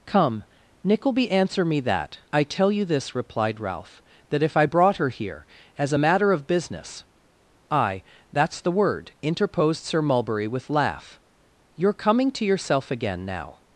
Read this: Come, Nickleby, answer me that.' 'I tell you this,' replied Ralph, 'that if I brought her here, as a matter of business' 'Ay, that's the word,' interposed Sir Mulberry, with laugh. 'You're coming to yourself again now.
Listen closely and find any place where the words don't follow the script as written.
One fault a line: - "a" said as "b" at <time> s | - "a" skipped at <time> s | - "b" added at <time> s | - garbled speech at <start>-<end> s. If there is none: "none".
none